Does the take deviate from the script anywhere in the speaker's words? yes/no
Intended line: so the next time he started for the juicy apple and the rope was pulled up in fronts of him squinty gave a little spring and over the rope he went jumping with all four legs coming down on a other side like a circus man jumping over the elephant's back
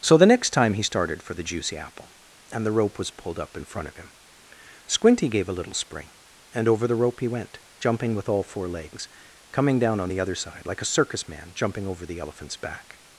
yes